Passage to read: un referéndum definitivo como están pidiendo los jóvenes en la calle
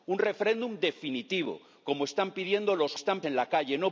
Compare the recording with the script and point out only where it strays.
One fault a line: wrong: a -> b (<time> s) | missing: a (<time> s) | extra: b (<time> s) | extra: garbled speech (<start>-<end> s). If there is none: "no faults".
wrong: jóvenes -> están (2.9 s)